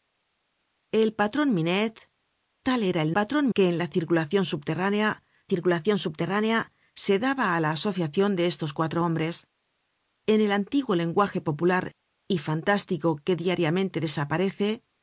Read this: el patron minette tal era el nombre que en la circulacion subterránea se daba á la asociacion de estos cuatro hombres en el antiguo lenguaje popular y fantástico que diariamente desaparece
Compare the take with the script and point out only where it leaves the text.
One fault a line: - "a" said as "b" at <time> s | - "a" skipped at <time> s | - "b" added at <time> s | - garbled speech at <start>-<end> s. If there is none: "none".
- "nombre" said as "patron" at 3.2 s
- "circulacion subterránea" added at 5.5 s